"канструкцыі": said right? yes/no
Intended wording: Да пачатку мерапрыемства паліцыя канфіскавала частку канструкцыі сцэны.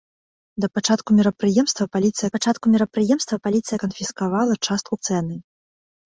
no